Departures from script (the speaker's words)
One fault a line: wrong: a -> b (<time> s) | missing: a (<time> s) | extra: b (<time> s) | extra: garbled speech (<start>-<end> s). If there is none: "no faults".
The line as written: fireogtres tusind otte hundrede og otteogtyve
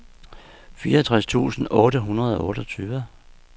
no faults